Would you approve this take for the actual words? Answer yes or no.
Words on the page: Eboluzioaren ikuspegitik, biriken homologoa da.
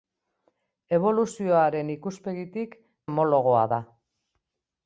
no